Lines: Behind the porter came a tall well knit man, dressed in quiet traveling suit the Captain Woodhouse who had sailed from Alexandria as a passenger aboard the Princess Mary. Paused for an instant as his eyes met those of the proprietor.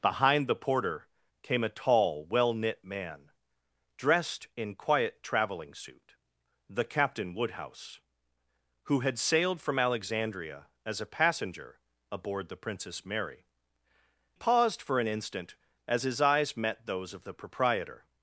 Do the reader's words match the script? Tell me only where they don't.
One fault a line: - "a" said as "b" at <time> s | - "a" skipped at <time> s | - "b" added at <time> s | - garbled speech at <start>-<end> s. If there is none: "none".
none